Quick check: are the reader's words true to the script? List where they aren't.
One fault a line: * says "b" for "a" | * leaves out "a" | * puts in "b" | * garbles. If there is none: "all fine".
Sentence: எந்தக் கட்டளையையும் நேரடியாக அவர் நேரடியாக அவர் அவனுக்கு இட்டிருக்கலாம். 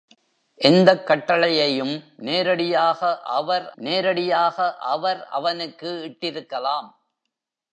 all fine